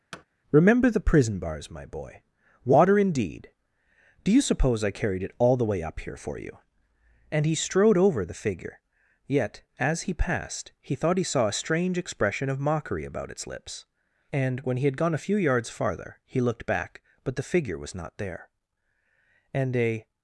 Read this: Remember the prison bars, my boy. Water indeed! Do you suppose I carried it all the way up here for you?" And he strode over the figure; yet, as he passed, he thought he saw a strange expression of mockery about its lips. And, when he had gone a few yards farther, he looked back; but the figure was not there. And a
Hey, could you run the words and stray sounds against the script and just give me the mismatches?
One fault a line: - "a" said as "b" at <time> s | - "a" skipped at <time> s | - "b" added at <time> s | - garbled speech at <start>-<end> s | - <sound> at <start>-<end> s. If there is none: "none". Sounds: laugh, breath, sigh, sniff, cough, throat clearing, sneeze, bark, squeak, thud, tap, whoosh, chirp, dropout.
- thud at 0.1-0.2 s